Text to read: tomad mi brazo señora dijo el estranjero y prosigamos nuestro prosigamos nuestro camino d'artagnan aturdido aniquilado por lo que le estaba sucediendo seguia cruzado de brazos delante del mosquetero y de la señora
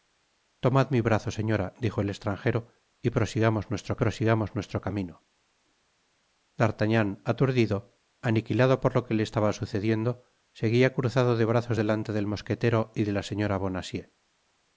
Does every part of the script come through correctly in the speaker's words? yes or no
yes